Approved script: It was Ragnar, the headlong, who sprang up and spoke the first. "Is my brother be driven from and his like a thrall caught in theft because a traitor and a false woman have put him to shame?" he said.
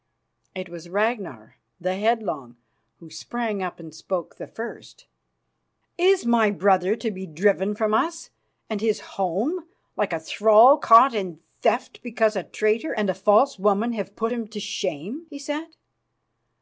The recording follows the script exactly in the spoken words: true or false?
false